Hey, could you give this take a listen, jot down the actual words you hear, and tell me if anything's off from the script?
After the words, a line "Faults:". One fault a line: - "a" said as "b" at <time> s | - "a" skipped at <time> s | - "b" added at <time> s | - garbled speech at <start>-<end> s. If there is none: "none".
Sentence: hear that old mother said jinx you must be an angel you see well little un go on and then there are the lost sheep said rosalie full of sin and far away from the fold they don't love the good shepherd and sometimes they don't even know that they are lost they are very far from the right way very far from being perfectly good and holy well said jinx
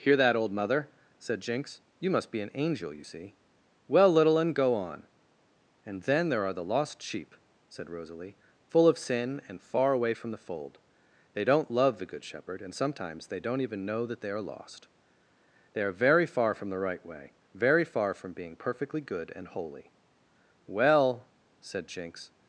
hear that old mother said jinx you must be an angel you see well little un go on and then there are the lost sheep said rosalie full of sin and far away from the fold they don't love the good shepherd and sometimes they don't even know that they are lost they are very far from the right way very far from being perfectly good and holy well said jinx
Faults:
none